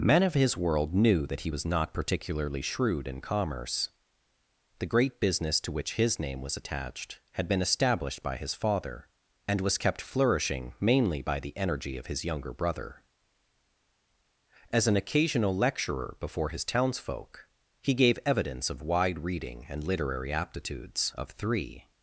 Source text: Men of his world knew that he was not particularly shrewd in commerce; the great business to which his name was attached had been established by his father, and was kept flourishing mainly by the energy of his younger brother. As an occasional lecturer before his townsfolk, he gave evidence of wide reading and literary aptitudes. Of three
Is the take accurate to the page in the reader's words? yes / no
yes